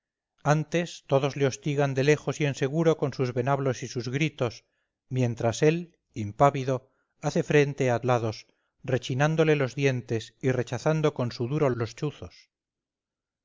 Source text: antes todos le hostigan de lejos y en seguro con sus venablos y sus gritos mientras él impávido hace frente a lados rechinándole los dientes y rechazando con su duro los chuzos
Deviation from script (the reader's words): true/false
false